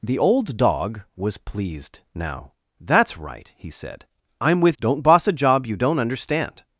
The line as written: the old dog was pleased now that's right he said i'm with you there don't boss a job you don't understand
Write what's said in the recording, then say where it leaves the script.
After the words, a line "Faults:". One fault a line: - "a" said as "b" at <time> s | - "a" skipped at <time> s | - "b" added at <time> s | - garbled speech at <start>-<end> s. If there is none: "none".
the old dog was pleased now that's right he said i'm with don't boss a job you don't understand
Faults:
- "you there" skipped at 4.8 s